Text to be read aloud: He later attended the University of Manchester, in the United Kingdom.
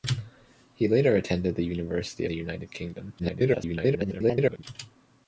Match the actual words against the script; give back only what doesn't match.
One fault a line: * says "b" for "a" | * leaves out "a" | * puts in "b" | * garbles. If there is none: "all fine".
* leaves out "of Manchester in"
* garbles